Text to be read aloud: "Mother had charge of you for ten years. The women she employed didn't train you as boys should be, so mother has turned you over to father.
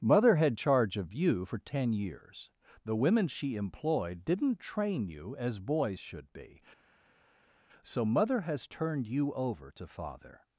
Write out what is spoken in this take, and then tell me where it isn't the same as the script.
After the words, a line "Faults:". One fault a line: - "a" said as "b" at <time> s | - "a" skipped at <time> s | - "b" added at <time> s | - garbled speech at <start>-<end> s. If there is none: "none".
"Mother had charge of you for ten years. The women she employed didn't train you as boys should be, so mother has turned you over to father.
Faults:
none